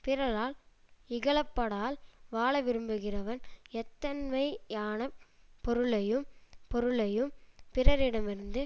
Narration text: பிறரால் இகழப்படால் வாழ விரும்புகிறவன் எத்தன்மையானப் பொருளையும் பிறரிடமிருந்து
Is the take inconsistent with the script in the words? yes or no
yes